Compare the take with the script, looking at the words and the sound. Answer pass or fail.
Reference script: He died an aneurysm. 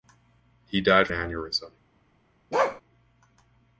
fail